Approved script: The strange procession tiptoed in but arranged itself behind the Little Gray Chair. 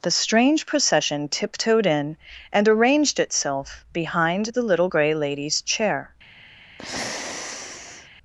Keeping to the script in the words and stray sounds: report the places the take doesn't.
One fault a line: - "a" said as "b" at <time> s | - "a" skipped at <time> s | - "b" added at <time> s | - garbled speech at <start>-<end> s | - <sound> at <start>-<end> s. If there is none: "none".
- "but" said as "and" at 2.5 s
- "Lady's" added at 5.1 s
- sigh at 6.8-8.1 s